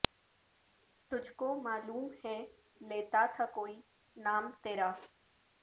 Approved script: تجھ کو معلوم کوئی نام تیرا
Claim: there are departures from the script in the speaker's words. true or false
true